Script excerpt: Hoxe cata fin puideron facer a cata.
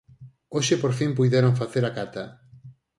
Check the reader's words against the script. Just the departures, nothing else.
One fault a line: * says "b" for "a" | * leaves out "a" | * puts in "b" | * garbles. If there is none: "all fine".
* says "por" for "cata"